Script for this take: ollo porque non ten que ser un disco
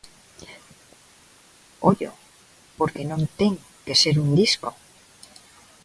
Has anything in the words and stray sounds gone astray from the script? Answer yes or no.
no